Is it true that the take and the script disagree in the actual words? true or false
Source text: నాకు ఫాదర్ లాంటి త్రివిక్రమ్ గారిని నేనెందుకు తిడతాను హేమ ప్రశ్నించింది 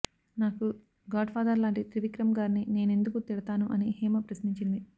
true